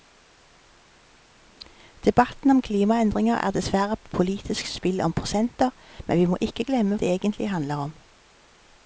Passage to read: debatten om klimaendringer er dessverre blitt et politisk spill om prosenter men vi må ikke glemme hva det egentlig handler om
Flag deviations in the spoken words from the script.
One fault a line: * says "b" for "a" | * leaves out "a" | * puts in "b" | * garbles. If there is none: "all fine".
* leaves out "blitt"
* leaves out "hva"